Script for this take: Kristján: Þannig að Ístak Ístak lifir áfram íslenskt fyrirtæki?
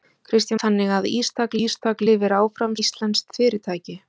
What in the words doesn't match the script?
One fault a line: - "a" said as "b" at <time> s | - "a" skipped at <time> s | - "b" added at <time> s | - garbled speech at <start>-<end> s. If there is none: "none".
none